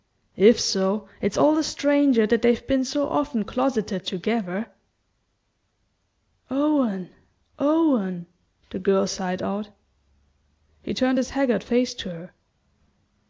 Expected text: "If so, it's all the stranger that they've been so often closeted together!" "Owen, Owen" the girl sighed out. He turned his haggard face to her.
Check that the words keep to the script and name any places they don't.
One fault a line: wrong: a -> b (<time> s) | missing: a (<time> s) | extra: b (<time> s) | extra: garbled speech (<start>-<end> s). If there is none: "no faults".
no faults